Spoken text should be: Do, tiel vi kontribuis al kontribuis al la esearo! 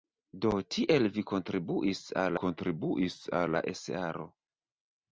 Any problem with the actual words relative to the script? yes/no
no